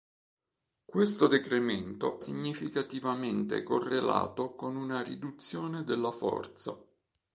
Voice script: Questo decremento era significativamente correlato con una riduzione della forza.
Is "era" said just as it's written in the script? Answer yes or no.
no